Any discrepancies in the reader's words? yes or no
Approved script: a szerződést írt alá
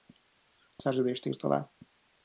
no